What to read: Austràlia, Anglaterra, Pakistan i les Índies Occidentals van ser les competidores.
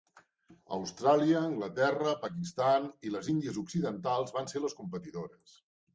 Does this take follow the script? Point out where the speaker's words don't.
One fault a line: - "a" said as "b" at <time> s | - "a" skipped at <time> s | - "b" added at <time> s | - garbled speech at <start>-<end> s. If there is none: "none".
none